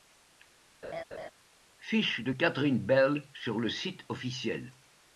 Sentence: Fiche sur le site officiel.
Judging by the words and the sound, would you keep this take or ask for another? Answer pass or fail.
fail